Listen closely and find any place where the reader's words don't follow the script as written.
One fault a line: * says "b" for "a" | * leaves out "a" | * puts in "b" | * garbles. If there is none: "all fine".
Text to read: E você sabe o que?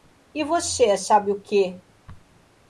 all fine